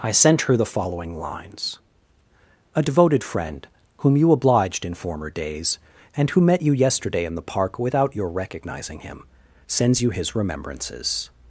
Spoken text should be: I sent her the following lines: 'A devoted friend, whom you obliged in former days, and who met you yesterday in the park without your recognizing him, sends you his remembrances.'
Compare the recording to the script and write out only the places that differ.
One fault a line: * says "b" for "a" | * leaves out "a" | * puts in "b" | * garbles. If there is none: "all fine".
all fine